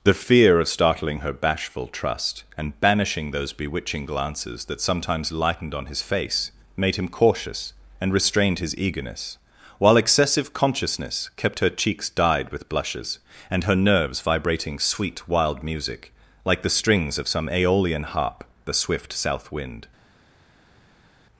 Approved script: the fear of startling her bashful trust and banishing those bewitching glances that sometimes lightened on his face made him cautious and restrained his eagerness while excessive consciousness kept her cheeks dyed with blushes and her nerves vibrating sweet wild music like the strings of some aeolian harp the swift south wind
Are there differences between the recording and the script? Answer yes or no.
no